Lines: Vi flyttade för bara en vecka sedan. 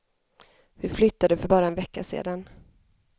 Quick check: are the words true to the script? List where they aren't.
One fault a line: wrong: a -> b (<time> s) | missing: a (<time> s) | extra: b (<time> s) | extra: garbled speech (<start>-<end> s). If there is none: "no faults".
no faults